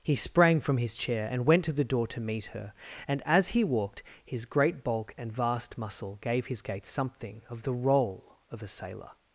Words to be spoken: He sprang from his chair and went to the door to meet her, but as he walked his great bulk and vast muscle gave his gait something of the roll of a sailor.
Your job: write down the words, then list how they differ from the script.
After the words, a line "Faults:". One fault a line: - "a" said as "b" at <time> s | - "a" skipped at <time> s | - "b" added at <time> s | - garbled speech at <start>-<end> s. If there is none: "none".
He sprang from his chair and went to the door to meet her, and as he walked his great bulk and vast muscle gave his gait something of the roll of a sailor.
Faults:
- "but" said as "and" at 3.1 s